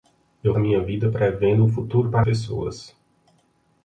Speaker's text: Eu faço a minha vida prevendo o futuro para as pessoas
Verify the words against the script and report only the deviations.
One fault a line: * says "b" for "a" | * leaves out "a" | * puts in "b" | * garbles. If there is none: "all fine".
* leaves out "faço"
* leaves out "as"